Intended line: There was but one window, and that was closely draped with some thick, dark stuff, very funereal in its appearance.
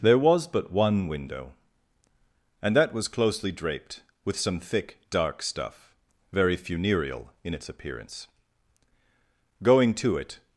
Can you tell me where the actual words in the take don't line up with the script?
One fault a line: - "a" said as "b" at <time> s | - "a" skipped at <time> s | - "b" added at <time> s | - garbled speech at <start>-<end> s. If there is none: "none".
- "Going to it" added at 9.6 s